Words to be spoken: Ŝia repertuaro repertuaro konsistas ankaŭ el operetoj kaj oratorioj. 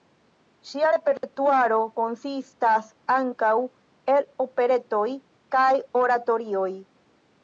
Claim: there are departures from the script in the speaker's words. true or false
true